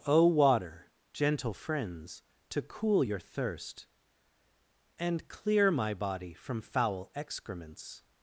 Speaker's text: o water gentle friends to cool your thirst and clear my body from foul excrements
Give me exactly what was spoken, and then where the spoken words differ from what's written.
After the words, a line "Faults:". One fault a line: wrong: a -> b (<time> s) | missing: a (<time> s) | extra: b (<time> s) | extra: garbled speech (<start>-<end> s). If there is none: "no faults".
o water gentle friends to cool your thirst and clear my body from foul excrements
Faults:
no faults